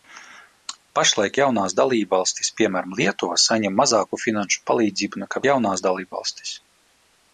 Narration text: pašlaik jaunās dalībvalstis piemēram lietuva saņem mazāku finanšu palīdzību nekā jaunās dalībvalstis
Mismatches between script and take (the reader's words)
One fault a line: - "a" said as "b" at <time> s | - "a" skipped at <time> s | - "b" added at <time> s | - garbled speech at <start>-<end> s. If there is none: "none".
none